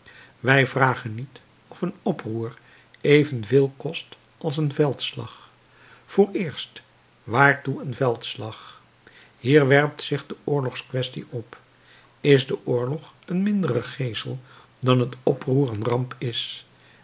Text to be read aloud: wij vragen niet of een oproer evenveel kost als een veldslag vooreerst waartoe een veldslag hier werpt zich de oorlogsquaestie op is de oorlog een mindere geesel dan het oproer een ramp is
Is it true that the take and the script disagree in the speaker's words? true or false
false